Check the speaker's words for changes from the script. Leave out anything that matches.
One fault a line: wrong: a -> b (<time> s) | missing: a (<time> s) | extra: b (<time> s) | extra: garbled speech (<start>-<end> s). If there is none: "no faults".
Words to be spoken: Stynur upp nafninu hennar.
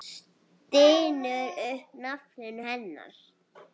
no faults